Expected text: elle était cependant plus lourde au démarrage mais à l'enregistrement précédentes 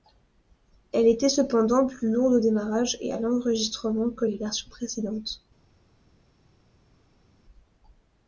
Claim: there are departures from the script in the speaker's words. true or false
true